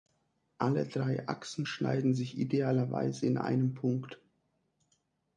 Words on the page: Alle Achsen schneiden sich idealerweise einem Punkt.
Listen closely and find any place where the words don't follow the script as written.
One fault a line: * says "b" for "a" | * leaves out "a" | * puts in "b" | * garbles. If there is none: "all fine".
* puts in "drei"
* puts in "in"